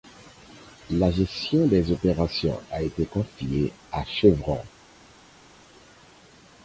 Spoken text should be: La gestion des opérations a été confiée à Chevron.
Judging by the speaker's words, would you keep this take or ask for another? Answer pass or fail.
pass